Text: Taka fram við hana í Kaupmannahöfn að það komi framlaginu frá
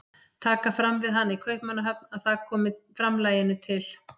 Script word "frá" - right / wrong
wrong